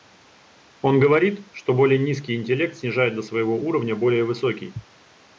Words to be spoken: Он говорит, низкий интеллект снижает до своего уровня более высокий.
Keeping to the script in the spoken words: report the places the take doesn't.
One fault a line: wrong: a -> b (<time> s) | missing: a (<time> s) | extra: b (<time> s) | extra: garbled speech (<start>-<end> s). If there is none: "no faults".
extra: что более (1.5 s)